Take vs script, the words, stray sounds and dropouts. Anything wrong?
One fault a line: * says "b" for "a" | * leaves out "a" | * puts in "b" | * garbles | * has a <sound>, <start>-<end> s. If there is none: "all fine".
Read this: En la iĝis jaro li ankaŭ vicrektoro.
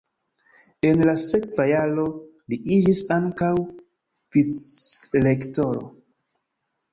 * says "sekva" for "iĝis"
* puts in "iĝis"